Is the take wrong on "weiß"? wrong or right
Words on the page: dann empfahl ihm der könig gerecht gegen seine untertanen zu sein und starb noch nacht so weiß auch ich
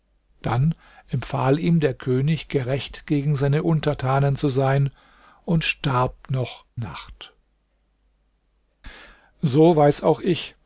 right